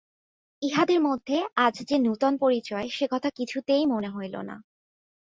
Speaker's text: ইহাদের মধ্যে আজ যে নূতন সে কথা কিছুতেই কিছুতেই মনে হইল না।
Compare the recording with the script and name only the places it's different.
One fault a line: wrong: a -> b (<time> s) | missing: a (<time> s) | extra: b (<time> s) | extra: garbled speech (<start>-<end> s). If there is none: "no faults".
extra: পরিচয় (2.4 s)
missing: কিছুতেই (3.8 s)